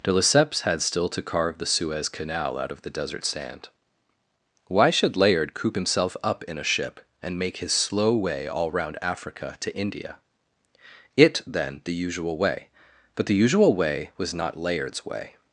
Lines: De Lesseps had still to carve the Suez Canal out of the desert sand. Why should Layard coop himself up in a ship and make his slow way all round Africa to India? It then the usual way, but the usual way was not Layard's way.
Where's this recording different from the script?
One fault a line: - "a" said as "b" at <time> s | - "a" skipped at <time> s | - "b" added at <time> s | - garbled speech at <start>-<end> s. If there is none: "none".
none